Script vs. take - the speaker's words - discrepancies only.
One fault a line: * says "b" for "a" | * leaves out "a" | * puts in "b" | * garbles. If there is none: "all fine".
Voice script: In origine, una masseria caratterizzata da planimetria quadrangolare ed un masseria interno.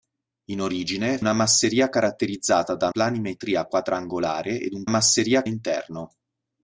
all fine